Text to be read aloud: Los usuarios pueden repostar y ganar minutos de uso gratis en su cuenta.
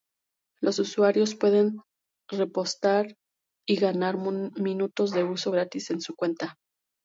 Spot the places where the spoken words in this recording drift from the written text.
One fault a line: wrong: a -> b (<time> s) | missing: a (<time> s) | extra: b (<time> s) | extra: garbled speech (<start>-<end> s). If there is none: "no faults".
no faults